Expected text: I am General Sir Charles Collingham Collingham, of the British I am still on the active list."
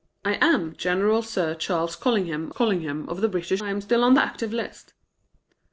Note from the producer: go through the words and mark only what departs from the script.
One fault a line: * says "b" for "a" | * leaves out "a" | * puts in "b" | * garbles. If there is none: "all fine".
all fine